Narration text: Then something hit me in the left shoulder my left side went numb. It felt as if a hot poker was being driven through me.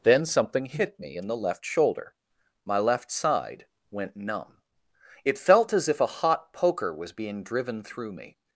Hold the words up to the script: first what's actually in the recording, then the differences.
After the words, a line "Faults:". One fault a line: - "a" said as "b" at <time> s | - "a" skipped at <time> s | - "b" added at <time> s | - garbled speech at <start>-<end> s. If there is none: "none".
Then something hit me in the left shoulder my left side went numb. It felt as if a hot poker was being driven through me.
Faults:
none